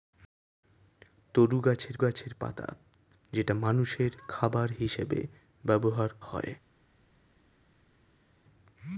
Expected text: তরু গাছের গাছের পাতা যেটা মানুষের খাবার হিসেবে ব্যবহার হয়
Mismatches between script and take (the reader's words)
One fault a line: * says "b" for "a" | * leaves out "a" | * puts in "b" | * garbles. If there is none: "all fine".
all fine